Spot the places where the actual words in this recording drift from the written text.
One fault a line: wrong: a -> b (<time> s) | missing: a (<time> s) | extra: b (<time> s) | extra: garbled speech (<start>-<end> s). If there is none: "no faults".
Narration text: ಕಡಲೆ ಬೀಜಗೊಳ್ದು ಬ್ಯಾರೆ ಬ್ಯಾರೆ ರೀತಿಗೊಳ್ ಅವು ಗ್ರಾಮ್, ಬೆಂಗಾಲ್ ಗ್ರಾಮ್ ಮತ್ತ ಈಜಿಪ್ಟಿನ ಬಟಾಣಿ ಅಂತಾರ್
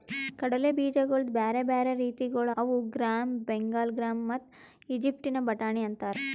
no faults